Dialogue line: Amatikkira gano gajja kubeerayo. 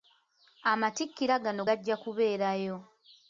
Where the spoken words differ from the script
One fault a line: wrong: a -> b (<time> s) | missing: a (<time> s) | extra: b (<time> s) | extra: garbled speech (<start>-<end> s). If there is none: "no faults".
no faults